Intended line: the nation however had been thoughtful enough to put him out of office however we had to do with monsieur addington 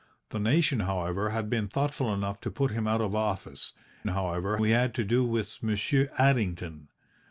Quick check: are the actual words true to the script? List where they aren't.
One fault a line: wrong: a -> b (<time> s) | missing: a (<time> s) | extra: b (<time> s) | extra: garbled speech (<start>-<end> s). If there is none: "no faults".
no faults